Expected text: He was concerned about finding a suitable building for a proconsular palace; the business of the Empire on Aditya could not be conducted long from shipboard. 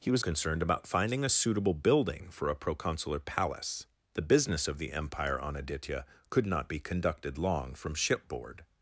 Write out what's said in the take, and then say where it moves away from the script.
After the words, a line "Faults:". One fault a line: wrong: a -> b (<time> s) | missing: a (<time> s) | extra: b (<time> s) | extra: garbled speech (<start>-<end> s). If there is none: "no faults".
He was concerned about finding a suitable building for a proconsular palace; the business of the Empire on Aditya could not be conducted long from shipboard.
Faults:
no faults